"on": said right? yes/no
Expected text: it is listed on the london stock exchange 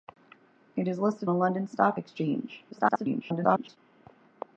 no